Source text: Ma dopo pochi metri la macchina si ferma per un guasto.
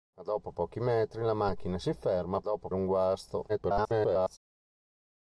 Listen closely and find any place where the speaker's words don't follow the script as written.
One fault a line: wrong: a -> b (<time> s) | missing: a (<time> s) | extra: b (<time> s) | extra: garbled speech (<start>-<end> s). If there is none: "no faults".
wrong: per -> dopo (2.4 s)
extra: garbled speech (3.5-4.4 s)